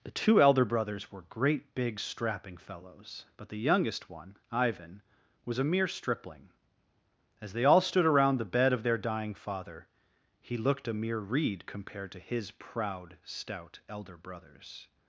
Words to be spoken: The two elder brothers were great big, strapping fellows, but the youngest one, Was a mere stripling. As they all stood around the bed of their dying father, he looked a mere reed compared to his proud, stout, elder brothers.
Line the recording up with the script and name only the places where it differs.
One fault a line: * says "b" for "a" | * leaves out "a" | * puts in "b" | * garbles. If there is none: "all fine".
* puts in "Ivan"